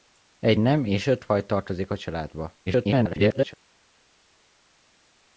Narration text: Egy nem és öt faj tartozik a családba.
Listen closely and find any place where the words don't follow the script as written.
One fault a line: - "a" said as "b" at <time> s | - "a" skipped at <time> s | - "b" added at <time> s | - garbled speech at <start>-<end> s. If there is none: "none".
- garbled speech at 2.7-3.5 s